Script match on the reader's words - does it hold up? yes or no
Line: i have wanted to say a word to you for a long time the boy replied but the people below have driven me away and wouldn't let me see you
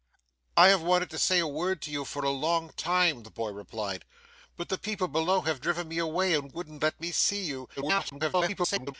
no